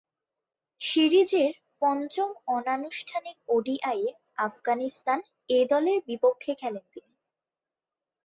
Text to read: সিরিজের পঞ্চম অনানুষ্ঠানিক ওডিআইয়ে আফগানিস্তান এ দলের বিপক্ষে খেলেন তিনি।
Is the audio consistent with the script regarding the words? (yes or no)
yes